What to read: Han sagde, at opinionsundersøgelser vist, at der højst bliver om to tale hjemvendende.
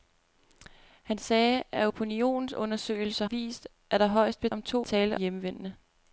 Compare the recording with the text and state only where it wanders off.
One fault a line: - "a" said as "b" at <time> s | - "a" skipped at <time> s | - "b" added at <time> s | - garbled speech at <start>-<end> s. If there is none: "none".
none